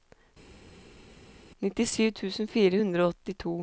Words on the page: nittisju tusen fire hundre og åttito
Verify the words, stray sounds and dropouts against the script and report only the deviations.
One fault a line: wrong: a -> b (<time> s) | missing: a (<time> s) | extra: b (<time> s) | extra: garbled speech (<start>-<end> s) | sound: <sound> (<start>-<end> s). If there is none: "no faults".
no faults